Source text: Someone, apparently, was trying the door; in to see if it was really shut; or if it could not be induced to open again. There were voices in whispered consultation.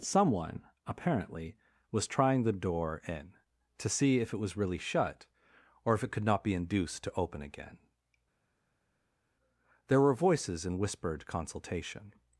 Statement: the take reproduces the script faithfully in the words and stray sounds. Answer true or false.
true